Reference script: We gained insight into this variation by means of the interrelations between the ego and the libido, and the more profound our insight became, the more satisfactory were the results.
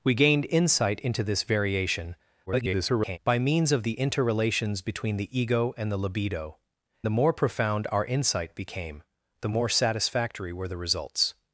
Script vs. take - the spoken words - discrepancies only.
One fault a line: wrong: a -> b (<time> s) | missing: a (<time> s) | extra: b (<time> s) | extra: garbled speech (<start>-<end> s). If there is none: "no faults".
extra: garbled speech (2.5-3.2 s)
missing: and (6.6 s)